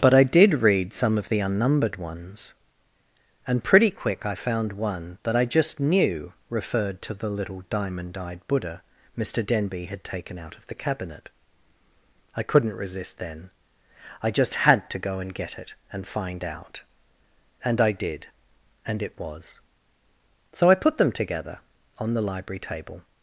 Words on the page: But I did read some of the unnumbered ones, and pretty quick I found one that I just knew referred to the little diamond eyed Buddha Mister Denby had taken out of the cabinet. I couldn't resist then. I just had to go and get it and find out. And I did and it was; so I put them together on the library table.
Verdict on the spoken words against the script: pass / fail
pass